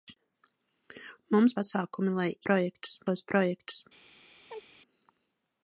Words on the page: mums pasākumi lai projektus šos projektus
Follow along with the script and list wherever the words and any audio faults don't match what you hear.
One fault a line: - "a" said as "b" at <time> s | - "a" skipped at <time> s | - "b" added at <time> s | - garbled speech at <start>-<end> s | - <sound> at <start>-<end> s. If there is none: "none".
- chirp at 4.5-4.7 s